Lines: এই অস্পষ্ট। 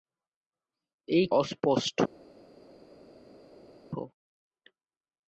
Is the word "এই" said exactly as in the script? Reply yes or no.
yes